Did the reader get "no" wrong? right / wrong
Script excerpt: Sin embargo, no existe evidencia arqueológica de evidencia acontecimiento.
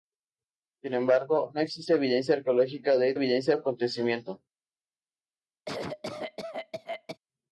right